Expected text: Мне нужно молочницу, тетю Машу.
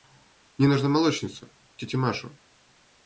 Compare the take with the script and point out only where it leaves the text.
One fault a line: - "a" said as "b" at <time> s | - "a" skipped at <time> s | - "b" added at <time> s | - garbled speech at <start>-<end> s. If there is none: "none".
none